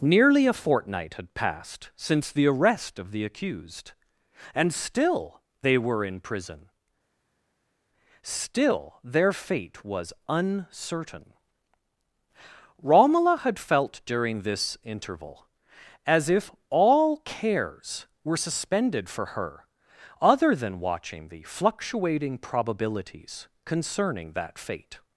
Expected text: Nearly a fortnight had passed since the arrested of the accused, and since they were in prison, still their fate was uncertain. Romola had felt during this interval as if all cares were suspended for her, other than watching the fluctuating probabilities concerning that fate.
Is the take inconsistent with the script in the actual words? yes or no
yes